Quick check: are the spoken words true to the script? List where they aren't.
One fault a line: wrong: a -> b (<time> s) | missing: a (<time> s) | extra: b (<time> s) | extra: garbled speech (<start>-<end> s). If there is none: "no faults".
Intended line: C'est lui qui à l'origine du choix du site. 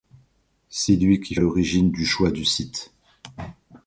no faults